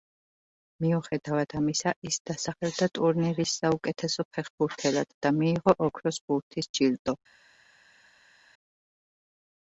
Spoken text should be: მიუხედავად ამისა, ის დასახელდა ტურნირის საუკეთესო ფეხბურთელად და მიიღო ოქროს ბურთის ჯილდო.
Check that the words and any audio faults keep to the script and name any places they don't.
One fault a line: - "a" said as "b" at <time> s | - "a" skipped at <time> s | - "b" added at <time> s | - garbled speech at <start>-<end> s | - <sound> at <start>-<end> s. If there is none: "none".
none